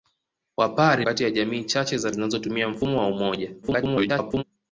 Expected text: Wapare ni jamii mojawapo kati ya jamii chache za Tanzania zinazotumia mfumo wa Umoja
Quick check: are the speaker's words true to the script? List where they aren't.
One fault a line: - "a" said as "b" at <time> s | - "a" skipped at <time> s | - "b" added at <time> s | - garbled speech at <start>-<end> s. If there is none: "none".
- "ni jamii mojawapo" skipped at 1.1 s
- "Tanzania" skipped at 2.1 s
- garbled speech at 3.6-4.4 s